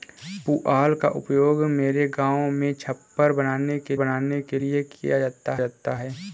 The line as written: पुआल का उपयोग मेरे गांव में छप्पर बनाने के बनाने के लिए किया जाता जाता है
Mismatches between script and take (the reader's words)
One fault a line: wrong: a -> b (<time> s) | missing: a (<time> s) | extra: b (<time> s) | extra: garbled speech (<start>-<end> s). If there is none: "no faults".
no faults